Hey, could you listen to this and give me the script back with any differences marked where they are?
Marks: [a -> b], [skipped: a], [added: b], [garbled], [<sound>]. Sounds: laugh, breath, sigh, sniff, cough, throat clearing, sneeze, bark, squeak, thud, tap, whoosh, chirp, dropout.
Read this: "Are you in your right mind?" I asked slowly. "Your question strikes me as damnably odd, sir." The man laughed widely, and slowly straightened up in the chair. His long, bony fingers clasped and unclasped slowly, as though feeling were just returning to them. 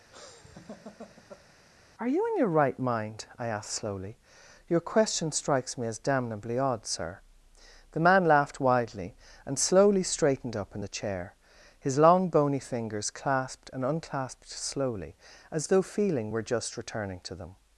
[laugh] "Are you in your right mind?" I asked slowly. "Your question strikes me as damnably odd, sir." The man laughed widely, and slowly straightened up in the chair. His long, bony fingers clasped and unclasped slowly, as though feeling were just returning to them.